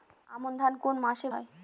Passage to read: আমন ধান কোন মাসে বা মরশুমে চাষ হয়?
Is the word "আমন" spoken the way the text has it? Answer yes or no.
yes